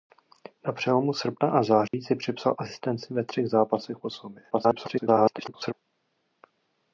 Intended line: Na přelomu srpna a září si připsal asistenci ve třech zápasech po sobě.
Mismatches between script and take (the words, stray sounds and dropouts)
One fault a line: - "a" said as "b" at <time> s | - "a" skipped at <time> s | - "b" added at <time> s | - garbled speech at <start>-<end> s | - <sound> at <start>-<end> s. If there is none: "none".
- dropout at 1.9-1.9 s
- garbled speech at 4.5-5.7 s